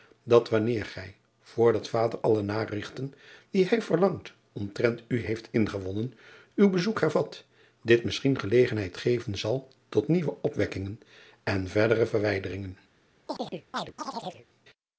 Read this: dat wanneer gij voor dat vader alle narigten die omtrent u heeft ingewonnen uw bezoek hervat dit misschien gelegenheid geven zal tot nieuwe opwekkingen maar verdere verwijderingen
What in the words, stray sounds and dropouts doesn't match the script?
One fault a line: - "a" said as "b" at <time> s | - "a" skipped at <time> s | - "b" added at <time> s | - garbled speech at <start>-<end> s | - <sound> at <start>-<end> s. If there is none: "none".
- "hij verlangt" added at 3.6 s
- "maar" said as "en" at 11.4 s
- chirp at 13.3-14.5 s